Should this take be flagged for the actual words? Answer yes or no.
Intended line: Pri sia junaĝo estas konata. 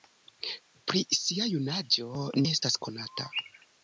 no